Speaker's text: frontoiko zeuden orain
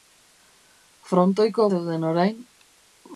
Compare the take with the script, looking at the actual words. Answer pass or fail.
pass